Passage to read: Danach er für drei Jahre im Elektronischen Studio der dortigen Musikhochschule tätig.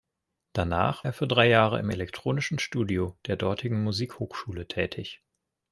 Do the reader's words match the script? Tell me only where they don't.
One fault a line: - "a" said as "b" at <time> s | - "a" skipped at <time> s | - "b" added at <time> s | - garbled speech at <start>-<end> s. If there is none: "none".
none